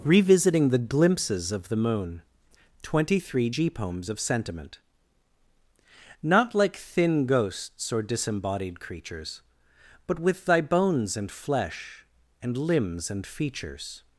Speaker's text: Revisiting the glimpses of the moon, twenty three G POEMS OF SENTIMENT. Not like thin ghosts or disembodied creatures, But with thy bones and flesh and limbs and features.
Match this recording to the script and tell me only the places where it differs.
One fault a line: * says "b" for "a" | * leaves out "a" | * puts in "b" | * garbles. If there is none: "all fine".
all fine